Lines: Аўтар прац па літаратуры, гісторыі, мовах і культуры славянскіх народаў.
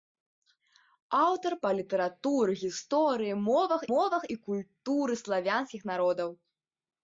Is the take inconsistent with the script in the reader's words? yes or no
yes